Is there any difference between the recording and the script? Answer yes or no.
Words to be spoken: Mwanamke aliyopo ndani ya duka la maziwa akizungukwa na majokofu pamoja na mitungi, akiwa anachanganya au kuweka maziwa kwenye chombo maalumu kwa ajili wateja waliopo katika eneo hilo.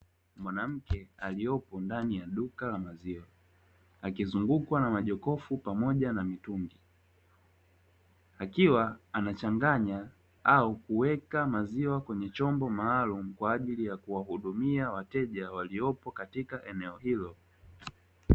yes